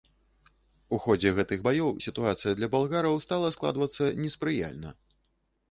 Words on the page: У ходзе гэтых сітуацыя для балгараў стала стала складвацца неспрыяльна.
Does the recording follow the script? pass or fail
fail